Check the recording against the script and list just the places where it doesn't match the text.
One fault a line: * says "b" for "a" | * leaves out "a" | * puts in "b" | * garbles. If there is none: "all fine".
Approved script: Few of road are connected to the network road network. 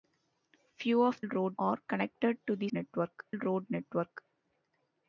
all fine